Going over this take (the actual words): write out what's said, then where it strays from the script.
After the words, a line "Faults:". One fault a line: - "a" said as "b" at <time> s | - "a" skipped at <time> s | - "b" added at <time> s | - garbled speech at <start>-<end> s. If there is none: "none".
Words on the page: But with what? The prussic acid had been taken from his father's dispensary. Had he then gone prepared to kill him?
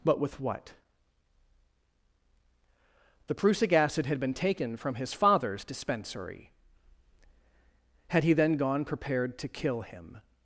But with what? The prussic acid had been taken from his father's dispensary. Had he then gone prepared to kill him?
Faults:
none